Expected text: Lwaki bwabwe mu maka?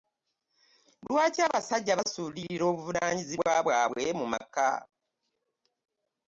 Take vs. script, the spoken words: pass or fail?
fail